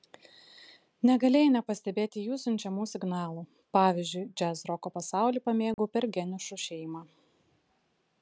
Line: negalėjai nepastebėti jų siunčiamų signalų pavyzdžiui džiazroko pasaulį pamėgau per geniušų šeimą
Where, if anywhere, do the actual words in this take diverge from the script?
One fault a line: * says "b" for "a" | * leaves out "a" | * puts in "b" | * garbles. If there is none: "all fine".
all fine